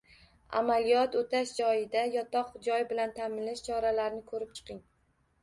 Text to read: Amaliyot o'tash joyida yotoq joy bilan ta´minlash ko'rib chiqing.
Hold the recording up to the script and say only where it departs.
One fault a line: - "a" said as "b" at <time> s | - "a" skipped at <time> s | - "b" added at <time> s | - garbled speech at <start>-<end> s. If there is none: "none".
- "choralarini" added at 3.7 s